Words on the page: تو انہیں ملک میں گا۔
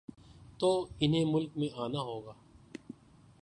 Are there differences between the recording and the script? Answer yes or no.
yes